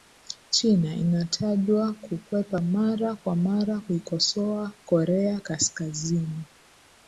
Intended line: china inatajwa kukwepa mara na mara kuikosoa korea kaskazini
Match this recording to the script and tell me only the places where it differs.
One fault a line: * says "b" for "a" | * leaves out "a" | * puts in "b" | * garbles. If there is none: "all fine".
* says "kwa" for "na"